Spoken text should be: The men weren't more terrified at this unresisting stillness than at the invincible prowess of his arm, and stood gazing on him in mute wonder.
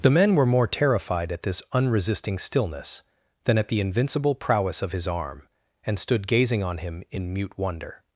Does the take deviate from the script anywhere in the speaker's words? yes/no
yes